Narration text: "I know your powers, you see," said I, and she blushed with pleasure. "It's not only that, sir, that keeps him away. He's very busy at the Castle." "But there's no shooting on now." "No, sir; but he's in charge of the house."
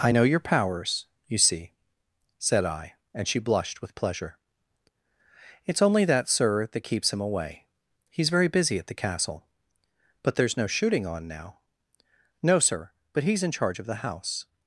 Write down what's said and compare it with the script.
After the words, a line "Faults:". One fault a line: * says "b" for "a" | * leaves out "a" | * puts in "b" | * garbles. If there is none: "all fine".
"I know your powers, you see," said I, and she blushed with pleasure. "It's only that, sir, that keeps him away. He's very busy at the Castle." "But there's no shooting on now." "No, sir; but he's in charge of the house."
Faults:
* leaves out "not"